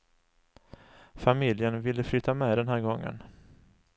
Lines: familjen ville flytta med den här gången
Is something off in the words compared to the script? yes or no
no